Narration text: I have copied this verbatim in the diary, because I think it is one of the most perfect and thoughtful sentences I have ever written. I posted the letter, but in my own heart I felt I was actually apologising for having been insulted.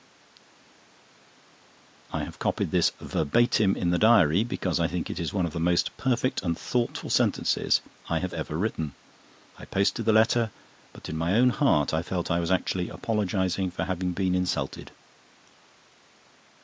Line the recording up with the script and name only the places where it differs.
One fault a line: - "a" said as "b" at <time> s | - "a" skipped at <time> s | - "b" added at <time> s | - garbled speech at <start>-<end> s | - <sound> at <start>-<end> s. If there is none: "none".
none